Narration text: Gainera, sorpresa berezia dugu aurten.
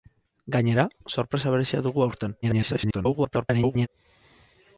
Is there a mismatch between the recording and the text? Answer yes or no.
yes